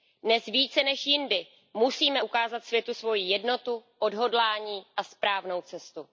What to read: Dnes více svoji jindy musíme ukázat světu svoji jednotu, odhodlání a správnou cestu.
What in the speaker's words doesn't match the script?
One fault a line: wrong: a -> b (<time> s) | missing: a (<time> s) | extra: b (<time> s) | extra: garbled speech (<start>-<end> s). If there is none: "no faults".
wrong: svoji -> než (0.8 s)